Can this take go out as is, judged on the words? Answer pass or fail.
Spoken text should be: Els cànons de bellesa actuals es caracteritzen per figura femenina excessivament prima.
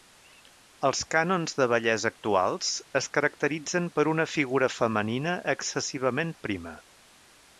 fail